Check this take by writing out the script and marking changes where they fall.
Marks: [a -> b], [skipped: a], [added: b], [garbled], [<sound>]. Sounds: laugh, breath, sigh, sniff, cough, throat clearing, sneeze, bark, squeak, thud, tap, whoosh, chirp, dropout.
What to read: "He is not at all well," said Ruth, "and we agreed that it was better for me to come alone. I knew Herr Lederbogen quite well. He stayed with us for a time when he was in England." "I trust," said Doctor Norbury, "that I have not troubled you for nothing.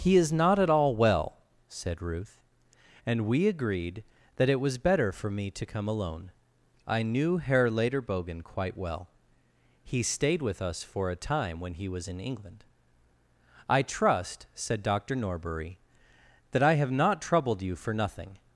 "He is not at all well," said Ruth, "and we agreed that it was better for me to come alone. I knew Herr Lederbogen quite well. He stayed with us for a time when he was in England." "I trust," said Doctor Norbury, "that I have not troubled you for nothing.